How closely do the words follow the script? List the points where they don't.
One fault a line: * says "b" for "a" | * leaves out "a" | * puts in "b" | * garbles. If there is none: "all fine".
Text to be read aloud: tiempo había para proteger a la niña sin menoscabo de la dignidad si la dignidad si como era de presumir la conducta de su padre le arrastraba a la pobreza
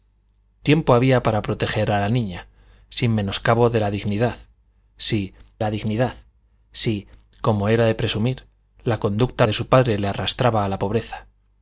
all fine